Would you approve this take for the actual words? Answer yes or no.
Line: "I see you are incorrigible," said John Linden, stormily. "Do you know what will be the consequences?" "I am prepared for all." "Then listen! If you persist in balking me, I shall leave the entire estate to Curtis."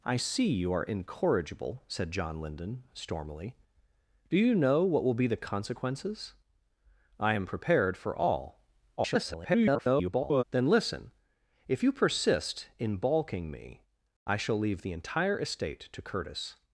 no